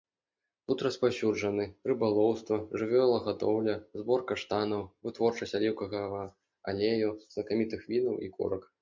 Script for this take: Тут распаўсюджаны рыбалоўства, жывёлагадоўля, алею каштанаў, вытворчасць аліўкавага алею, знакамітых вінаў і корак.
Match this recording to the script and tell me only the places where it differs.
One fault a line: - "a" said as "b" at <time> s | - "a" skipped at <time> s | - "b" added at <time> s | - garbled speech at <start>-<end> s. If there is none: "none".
- "алею" said as "збор" at 4.0 s